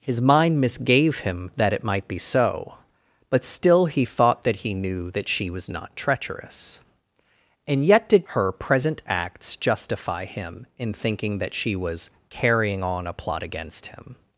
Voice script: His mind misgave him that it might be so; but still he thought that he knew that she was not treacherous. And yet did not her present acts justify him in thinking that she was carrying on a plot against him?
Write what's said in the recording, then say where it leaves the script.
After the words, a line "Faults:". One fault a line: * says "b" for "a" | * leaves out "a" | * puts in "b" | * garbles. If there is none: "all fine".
His mind misgave him that it might be so; but still he thought that he knew that she was not treacherous. And yet did her present acts justify him in thinking that she was carrying on a plot against him?
Faults:
* leaves out "not"